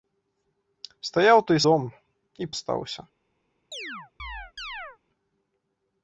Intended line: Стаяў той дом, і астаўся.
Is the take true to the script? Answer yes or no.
yes